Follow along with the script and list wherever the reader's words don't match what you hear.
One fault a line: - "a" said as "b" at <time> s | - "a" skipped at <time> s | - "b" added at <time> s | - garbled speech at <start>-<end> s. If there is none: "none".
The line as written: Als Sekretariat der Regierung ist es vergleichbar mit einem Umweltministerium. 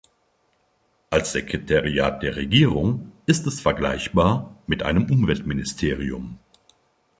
none